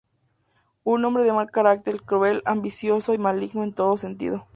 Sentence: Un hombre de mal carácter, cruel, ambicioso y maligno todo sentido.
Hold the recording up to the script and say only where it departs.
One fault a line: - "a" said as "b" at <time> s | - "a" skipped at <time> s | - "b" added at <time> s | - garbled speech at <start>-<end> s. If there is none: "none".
- "en" added at 3.6 s